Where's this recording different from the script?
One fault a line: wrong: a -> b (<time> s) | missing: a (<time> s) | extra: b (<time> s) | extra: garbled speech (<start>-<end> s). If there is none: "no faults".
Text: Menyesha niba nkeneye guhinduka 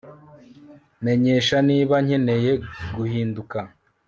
no faults